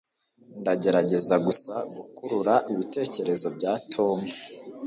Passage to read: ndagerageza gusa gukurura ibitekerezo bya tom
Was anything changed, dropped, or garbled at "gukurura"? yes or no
no